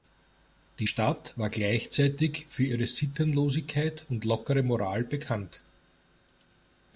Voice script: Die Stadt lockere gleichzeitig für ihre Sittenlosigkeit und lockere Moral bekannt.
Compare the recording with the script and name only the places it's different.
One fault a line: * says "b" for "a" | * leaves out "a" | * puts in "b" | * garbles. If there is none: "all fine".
* says "war" for "lockere"